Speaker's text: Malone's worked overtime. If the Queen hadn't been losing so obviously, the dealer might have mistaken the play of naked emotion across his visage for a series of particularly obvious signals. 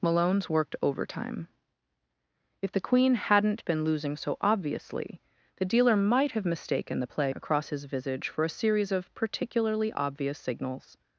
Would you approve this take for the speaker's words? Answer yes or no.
no